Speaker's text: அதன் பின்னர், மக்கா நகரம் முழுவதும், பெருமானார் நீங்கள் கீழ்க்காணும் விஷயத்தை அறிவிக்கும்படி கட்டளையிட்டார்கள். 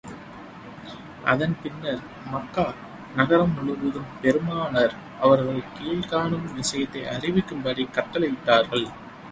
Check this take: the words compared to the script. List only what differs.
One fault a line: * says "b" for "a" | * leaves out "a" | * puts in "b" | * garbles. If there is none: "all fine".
* says "அவர்கள்" for "நீங்கள்"